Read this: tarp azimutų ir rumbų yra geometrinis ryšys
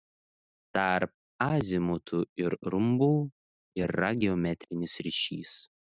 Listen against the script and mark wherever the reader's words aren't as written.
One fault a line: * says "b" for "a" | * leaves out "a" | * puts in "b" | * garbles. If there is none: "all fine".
all fine